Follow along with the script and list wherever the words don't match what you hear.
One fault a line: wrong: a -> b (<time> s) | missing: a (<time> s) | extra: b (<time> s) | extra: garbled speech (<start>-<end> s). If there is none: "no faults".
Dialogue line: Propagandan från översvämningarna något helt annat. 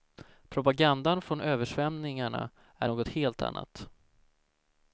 extra: är (2.8 s)